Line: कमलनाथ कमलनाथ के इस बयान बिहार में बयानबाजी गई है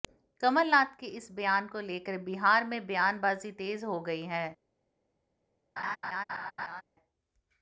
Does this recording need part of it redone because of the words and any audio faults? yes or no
yes